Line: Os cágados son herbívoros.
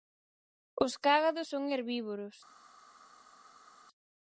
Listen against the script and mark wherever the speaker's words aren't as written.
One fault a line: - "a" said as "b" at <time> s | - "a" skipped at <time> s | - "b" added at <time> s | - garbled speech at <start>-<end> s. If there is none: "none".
none